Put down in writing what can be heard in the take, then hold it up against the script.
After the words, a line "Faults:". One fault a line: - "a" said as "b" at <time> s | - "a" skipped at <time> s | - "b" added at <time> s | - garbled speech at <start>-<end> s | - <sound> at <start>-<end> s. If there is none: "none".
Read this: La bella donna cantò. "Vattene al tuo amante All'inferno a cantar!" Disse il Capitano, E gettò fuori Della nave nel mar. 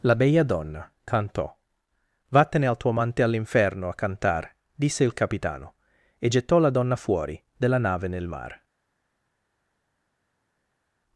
La bella donna cantò. "Vattene al tuo amante All'inferno a cantar!" Disse il Capitano, E gettò la donna fuori Della nave nel mar.
Faults:
- "la donna" added at 6.6 s